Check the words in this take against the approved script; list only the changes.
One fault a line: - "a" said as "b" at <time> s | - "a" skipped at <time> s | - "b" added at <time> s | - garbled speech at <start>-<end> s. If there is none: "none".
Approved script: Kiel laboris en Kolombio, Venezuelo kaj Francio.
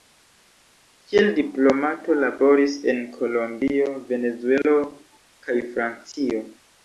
- "diplomato" added at 1.4 s